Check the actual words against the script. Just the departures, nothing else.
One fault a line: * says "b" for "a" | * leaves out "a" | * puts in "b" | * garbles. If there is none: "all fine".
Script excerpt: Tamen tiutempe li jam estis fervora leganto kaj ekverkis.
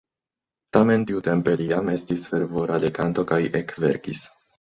all fine